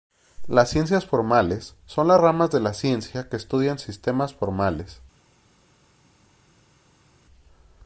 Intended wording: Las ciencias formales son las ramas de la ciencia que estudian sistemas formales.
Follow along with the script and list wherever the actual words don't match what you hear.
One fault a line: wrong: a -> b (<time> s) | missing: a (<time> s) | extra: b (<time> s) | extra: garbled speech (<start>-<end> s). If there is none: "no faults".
no faults